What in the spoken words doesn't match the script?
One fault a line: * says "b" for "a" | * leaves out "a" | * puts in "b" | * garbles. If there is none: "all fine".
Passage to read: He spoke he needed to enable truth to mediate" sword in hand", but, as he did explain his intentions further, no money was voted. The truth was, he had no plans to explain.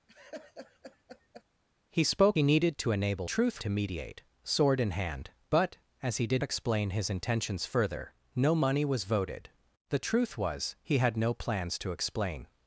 all fine